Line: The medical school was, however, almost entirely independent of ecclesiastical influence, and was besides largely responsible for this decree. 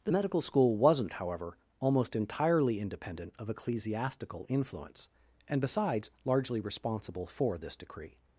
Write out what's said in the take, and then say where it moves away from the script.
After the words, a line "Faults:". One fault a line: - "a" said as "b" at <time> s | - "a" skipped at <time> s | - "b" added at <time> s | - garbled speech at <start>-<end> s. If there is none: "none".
The medical school wasn't, however, almost entirely independent of ecclesiastical influence, and besides largely responsible for this decree.
Faults:
- "was" said as "wasn't" at 0.8 s
- "was" skipped at 5.6 s